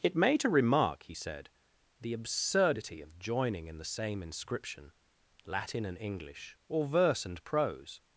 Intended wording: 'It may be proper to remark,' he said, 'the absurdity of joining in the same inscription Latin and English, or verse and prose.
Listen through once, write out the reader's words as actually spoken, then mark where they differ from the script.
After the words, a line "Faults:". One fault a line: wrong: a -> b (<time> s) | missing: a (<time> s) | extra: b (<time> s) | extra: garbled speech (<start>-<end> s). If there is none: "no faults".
'It may to remark,' he said, 'the absurdity of joining in the same inscription Latin and English, or verse and prose.
Faults:
missing: be proper (0.3 s)